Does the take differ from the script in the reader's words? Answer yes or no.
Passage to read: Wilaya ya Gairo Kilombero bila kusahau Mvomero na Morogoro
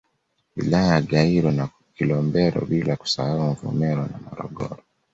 yes